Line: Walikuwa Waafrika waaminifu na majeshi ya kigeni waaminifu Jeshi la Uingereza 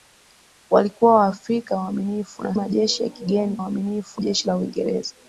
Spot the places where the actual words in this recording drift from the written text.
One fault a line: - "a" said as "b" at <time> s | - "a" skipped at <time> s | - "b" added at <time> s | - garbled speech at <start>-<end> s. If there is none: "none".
none